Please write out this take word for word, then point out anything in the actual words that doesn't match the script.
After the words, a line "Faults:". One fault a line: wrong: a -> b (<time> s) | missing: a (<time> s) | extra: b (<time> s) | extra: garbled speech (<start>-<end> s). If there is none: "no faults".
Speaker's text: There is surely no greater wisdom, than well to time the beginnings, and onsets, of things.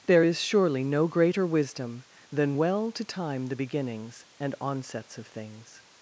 There is surely no greater wisdom, than well to time the beginnings, and onsets, of things.
Faults:
no faults